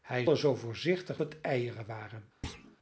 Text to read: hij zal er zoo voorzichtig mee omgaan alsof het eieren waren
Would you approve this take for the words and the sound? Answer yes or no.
no